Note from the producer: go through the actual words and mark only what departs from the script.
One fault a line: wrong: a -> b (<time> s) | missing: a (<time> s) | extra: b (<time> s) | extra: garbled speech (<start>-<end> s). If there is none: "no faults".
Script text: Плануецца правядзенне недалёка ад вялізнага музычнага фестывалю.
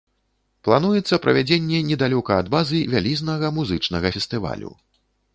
extra: базы (2.5 s)